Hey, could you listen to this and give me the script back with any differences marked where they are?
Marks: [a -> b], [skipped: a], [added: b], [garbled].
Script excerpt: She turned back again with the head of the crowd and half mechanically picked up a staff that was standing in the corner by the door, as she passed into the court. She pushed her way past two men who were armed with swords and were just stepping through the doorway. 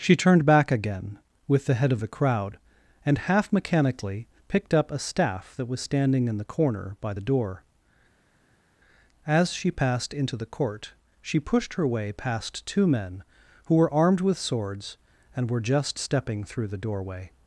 She turned back again with the head of the crowd and half mechanically picked up a staff that was standing in the corner by the door, as she passed into the court. She pushed her way past two men who were armed with swords and were just stepping through the doorway.